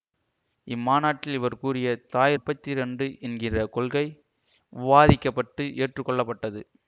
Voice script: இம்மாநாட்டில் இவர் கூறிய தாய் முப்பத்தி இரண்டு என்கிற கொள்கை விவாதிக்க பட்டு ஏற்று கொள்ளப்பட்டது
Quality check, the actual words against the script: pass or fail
pass